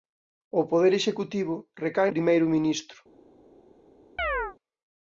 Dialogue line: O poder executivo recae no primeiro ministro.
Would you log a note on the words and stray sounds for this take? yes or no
yes